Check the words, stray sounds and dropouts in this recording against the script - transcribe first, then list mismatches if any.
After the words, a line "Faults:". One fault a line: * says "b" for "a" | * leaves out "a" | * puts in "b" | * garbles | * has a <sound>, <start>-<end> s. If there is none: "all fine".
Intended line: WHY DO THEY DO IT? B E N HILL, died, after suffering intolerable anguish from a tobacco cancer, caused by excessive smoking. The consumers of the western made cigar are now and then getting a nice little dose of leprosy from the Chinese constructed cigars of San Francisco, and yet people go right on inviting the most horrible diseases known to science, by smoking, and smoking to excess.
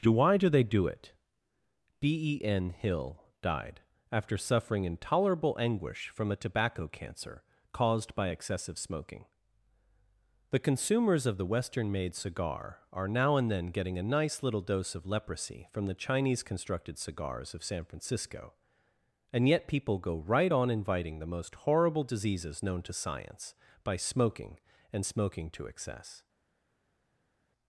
WHY DO THEY DO IT? B E N HILL, died, after suffering intolerable anguish from a tobacco cancer, caused by excessive smoking. The consumers of the western made cigar are now and then getting a nice little dose of leprosy from the Chinese constructed cigars of San Francisco, and yet people go right on inviting the most horrible diseases known to science, by smoking, and smoking to excess.
Faults:
all fine